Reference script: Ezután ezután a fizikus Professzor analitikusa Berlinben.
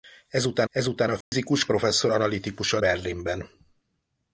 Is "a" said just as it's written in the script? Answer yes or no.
yes